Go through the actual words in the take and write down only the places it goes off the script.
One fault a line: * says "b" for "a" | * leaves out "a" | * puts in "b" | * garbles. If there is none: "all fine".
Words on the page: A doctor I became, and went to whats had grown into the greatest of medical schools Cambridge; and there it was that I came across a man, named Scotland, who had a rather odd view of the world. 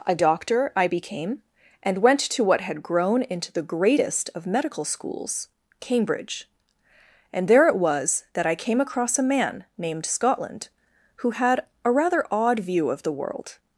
* says "what" for "whats"